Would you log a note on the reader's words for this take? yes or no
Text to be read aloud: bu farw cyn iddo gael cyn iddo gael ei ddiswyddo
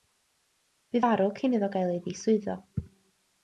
yes